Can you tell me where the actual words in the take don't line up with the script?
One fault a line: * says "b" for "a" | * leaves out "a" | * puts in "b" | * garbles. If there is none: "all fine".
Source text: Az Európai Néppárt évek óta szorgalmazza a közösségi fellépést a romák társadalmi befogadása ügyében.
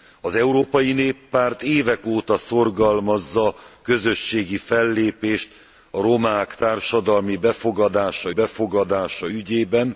* puts in "befogadása"